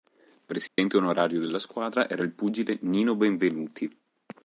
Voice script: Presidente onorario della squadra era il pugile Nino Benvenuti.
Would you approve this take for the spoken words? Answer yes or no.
yes